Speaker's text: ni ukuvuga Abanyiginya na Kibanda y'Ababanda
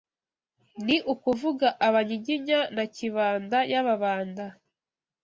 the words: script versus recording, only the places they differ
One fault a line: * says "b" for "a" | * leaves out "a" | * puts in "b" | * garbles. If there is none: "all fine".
all fine